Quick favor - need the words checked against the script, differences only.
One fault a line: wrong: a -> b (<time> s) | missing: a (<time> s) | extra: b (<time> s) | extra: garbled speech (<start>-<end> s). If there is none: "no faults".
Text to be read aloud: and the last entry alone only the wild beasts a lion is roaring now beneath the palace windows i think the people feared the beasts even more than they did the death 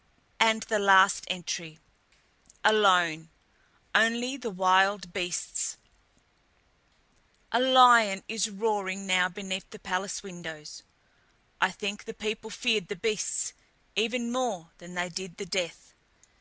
no faults